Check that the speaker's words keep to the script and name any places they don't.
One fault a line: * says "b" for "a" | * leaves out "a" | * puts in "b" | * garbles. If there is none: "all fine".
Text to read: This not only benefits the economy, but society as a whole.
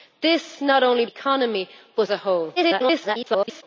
* leaves out "benefits the"
* leaves out "society as"
* garbles